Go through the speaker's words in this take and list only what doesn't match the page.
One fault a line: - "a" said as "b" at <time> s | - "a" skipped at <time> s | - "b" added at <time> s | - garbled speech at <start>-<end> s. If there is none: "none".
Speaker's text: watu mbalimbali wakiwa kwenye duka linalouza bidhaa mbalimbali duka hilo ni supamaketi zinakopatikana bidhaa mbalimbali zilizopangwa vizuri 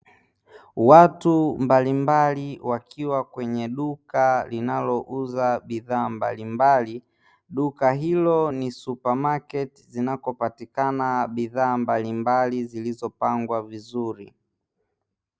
none